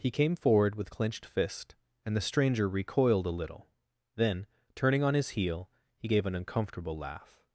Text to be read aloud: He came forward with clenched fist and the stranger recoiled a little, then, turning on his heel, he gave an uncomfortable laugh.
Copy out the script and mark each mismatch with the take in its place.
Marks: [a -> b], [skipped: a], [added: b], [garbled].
He came forward with clenched fist and the stranger recoiled a little, then, turning on his heel, he gave an uncomfortable laugh.